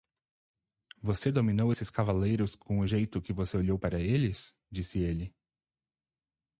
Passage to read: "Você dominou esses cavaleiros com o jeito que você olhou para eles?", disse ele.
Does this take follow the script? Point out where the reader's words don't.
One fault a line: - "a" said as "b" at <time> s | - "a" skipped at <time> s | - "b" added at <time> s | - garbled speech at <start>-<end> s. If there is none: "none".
none